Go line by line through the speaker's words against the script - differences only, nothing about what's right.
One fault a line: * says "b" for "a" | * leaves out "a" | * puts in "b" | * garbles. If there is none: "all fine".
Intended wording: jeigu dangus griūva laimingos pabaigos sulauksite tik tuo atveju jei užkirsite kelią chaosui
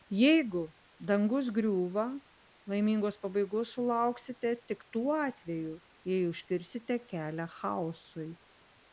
all fine